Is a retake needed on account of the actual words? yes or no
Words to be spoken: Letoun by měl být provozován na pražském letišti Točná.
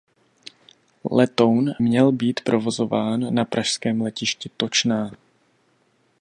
yes